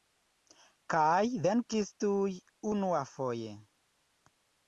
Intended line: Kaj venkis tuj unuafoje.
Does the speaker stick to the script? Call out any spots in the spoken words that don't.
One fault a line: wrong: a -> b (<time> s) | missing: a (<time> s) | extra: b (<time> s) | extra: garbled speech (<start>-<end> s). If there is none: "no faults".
no faults